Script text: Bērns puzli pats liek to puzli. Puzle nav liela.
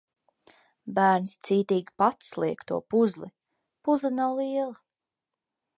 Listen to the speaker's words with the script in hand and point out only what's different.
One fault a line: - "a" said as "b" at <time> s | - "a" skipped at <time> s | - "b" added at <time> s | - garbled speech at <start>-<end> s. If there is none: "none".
- "puzli" said as "cītīgi" at 1.5 s